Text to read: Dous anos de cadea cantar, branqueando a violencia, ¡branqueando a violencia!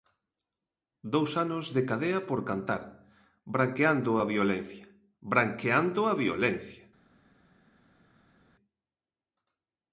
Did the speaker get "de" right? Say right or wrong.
right